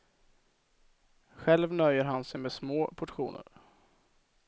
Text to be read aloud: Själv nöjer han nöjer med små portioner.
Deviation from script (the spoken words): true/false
true